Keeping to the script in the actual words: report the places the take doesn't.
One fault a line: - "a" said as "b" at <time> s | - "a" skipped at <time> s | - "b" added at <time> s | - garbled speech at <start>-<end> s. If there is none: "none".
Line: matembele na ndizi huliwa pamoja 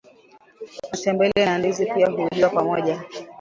- "pia" added at 1.9 s